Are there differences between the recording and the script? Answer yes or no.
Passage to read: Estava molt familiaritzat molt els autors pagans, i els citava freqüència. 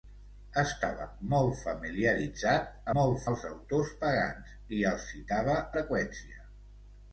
no